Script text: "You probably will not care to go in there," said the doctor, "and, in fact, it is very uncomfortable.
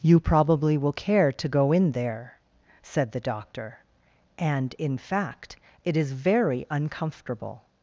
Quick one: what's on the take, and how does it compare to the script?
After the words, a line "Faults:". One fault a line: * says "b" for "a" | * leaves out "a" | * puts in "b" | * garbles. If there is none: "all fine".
"You probably will care to go in there," said the doctor, "and, in fact, it is very uncomfortable.
Faults:
* leaves out "not"